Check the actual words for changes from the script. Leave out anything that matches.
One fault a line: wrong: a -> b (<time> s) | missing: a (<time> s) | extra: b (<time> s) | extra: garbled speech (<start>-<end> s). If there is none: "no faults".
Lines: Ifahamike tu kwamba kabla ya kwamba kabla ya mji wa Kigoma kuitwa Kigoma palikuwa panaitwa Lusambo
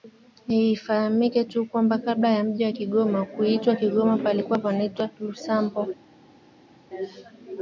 missing: kwamba kabla ya (2.4 s)